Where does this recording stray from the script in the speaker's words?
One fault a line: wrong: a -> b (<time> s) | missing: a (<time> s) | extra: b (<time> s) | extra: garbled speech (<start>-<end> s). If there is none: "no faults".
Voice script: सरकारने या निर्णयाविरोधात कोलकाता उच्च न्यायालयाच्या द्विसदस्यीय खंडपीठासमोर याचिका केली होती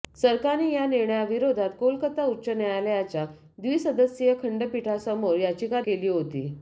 no faults